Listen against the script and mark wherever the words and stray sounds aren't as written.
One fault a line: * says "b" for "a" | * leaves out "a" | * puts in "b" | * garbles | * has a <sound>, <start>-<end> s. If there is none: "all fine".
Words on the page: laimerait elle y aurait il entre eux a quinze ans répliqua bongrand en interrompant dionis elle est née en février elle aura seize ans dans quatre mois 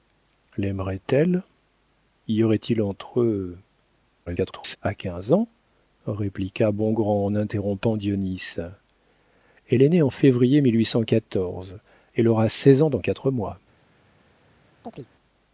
* garbles
* has a chirp, 14.8-15.1 s